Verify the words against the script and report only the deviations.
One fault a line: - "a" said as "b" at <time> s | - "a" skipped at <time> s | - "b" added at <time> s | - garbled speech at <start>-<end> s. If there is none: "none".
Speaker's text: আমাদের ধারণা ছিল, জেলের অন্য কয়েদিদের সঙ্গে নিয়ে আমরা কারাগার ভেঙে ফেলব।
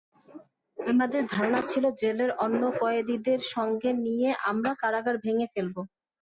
none